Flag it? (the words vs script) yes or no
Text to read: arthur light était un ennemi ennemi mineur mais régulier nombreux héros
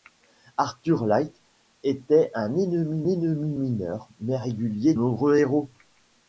no